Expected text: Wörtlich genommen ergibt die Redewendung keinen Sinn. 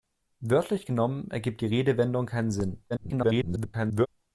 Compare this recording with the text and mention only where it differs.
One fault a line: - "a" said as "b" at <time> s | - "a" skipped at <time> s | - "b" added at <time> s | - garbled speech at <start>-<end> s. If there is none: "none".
- garbled speech at 2.9-4.1 s